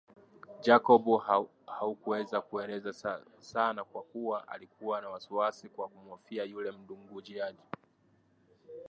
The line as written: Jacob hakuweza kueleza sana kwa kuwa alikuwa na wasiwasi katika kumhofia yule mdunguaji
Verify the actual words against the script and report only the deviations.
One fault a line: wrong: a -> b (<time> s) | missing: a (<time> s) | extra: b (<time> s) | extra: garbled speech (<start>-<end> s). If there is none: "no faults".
wrong: katika -> kwa (5.7 s)